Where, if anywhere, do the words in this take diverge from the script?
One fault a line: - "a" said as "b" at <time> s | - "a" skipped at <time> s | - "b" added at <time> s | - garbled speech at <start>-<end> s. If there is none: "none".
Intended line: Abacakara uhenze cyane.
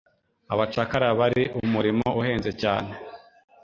- "bari umurimo" added at 1.2 s